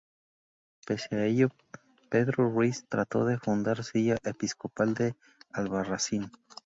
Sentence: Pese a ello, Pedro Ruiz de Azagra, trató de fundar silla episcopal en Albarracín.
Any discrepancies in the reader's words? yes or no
yes